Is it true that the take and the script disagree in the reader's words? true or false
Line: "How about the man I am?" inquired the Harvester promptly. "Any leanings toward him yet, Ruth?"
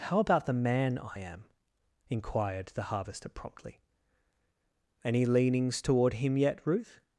false